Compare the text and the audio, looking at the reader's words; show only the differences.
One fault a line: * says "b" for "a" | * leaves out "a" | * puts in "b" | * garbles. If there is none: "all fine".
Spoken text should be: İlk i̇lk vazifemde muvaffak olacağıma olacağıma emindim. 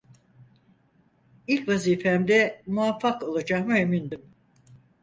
* leaves out "i̇lk"
* leaves out "olacağıma"